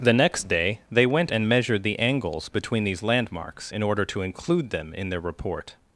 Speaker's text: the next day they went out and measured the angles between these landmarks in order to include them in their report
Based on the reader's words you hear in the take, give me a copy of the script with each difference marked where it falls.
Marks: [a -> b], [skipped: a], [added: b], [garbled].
the next day they went [skipped: out] and measured the angles between these landmarks in order to include them in their report